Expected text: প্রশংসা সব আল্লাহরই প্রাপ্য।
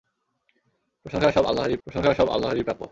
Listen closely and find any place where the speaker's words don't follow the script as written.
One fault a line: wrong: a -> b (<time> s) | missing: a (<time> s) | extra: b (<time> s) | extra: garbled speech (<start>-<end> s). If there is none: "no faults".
extra: প্রশংসা সব আল্লাহরই (1.9 s)